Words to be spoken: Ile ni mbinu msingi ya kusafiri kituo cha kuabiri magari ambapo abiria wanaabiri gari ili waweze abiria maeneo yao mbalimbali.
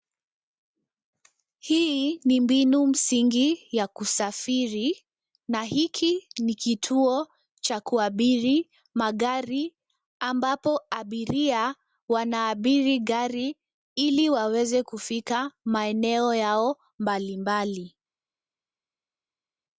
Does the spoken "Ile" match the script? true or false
false